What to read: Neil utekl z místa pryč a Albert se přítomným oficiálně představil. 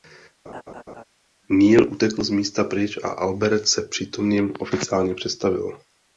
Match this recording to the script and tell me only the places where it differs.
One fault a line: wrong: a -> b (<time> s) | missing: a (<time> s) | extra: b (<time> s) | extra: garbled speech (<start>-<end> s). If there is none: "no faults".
no faults